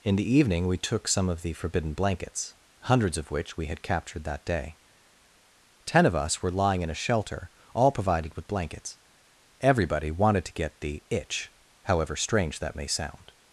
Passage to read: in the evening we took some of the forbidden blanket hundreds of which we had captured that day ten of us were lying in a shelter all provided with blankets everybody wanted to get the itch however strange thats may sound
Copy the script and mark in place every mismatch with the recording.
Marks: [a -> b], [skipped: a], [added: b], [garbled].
in the evening we took some of the forbidden [blanket -> blankets] hundreds of which we had captured that day ten of us were lying in a shelter all provided with blankets everybody wanted to get the itch however strange [thats -> that] may sound